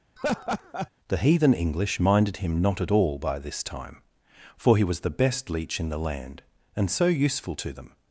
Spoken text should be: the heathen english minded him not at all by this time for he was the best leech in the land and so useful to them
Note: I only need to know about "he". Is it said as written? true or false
true